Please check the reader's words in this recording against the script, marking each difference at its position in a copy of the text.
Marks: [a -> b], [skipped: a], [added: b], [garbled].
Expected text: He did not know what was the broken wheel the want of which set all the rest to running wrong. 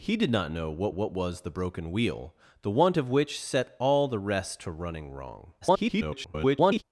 He did not know what [added: what] was the broken wheel the want of which set all the rest to running wrong. [garbled]